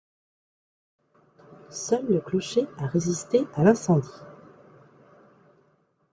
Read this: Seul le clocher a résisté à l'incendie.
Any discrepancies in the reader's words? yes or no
no